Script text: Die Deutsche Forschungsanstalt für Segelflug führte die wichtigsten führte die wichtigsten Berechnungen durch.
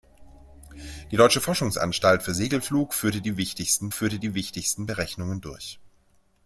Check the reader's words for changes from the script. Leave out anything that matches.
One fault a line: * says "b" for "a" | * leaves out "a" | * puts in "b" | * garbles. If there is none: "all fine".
all fine